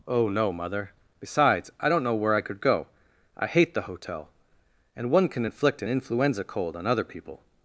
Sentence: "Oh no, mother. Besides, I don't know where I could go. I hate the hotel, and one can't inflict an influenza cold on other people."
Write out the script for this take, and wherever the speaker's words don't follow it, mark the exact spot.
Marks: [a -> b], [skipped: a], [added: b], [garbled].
"Oh no, mother. Besides, I don't know where I could go. I hate the hotel, and one [can't -> can] inflict an influenza cold on other people."